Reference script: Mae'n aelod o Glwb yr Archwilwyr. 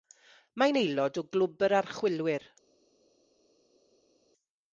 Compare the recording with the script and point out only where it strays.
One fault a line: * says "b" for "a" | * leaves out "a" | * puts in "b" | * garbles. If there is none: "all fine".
all fine